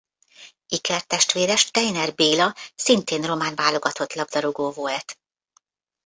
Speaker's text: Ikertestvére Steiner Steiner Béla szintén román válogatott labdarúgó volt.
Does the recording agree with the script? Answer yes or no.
no